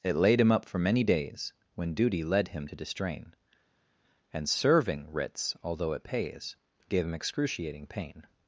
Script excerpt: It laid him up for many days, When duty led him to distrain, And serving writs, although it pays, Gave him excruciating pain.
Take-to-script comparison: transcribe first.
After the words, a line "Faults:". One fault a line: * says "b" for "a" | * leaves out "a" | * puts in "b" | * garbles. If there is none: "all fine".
It laid him up for many days, When duty led him to distrain, And serving writs, although it pays, Gave him excruciating pain.
Faults:
all fine